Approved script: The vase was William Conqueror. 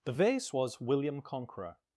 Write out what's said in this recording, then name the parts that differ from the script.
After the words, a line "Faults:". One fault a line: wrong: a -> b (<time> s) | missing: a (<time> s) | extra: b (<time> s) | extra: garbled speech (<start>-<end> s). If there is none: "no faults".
The vase was William Conqueror.
Faults:
no faults